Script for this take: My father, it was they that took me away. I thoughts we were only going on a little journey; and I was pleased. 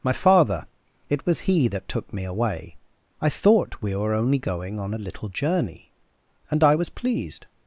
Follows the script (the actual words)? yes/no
no